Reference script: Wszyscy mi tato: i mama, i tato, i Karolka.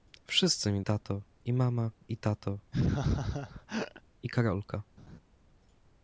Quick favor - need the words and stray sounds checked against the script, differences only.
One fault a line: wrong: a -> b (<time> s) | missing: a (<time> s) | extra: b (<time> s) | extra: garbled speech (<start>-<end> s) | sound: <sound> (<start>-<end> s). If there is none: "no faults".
sound: laugh (2.7-4.0 s)
sound: laugh (5.0-5.2 s)